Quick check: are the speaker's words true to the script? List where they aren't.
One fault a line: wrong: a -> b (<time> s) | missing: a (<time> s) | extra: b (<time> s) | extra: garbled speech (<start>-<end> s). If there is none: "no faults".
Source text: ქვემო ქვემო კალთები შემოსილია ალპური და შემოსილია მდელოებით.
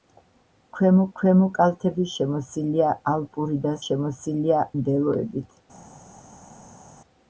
no faults